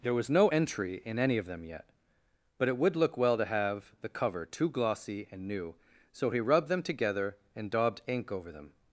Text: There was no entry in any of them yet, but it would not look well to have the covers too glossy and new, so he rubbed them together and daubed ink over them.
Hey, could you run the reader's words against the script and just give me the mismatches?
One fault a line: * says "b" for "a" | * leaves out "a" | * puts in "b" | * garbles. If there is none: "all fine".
* leaves out "not"
* says "cover" for "covers"